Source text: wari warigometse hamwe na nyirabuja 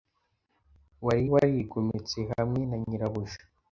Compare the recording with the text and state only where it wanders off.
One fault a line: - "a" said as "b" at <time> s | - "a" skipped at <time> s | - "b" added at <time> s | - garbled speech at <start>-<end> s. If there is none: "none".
none